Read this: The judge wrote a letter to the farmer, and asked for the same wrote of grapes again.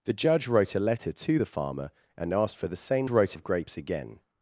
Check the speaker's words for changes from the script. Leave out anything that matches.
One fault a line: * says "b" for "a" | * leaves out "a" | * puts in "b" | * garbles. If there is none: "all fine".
all fine